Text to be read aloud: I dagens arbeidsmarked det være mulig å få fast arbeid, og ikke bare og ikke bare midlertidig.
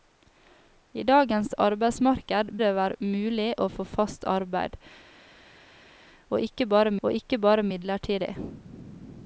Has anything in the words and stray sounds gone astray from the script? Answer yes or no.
no